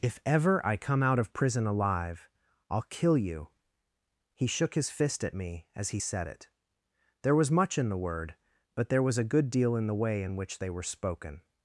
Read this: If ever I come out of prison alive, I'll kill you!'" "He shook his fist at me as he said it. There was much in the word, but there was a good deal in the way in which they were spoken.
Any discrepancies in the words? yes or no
no